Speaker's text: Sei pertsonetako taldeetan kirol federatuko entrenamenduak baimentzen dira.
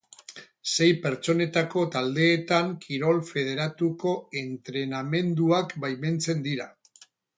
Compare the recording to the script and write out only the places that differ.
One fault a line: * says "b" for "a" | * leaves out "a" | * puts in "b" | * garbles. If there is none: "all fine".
all fine